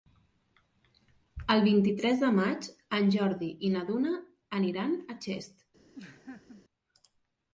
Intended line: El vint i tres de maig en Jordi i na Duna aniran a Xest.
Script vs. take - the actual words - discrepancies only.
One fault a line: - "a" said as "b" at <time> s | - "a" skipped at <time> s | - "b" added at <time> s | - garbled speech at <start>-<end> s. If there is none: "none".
none